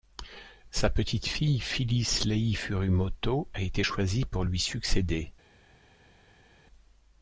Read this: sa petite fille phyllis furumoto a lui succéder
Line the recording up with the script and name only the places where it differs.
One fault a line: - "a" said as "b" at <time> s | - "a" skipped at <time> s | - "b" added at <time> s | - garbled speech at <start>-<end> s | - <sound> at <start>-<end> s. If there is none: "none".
- "lei" added at 2.2 s
- "été choisie pour" added at 3.6 s